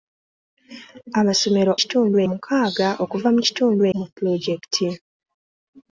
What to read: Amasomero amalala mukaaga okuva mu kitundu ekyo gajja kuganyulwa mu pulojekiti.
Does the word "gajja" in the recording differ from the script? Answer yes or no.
yes